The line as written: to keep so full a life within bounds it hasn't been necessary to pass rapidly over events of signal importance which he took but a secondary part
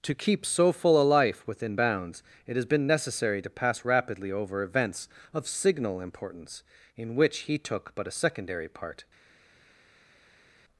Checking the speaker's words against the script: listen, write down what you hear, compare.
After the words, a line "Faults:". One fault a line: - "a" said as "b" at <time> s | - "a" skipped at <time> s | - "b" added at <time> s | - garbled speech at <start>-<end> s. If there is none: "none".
to keep so full a life within bounds it has been necessary to pass rapidly over events of signal importance in which he took but a secondary part
Faults:
- "hasn't" said as "has" at 2.5 s
- "in" added at 7.0 s